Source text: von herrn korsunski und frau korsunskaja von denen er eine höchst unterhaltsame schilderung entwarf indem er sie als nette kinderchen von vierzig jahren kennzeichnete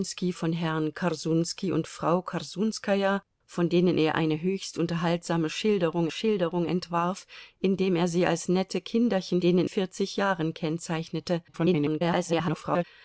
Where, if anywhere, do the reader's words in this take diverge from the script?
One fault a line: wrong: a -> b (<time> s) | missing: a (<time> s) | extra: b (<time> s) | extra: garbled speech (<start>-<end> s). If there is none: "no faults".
extra: schilderung (6.1 s)
wrong: von -> denen (9.4 s)
extra: garbled speech (11.5-12.8 s)